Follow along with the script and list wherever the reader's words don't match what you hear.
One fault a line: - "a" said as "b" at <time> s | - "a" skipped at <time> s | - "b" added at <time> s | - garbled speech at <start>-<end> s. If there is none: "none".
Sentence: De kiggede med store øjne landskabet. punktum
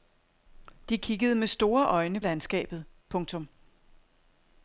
none